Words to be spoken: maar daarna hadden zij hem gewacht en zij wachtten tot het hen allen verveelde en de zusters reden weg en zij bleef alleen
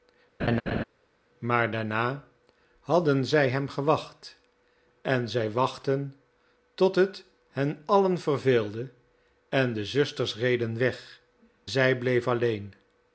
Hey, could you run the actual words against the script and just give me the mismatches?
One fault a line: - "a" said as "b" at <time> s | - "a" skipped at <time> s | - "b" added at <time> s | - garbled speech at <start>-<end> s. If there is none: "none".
- "en" skipped at 11.2 s